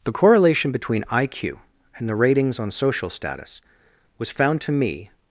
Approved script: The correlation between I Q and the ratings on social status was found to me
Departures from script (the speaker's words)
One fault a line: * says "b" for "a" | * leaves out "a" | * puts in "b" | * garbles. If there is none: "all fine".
all fine